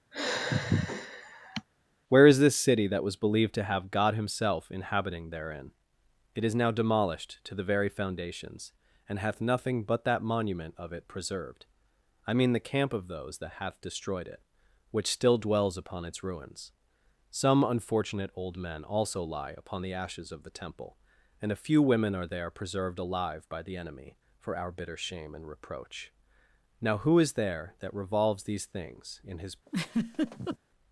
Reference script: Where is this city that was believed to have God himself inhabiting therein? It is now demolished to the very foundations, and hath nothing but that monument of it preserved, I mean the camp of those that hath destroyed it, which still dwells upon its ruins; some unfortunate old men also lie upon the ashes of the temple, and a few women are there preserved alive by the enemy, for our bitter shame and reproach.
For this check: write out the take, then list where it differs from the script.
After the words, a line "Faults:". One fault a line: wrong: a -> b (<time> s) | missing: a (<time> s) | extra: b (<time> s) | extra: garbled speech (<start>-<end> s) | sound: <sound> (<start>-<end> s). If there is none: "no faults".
Where is this city that was believed to have God himself inhabiting therein? It is now demolished to the very foundations, and hath nothing but that monument of it preserved, I mean the camp of those that hath destroyed it, which still dwells upon its ruins; some unfortunate old men also lie upon the ashes of the temple, and a few women are there preserved alive by the enemy, for our bitter shame and reproach. Now who is there that revolves these things in his
Faults:
sound: sigh (0.1-1.7 s)
extra: Now who is there that revolves these things in his (26.8 s)
sound: laugh (29.7-30.6 s)